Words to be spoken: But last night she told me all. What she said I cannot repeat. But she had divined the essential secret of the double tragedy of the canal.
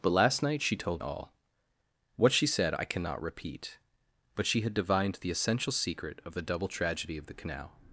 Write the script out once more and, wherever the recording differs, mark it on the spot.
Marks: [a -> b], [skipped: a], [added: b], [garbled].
But last night she told [skipped: me] all. What she said I cannot repeat. But she had divined the essential secret of the double tragedy of the canal.